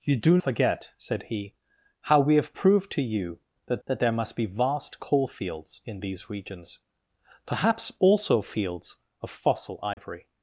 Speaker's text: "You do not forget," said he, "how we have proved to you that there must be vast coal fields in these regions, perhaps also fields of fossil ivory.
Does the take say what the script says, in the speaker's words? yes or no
no